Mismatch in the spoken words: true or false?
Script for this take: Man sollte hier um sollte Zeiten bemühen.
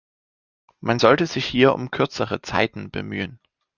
true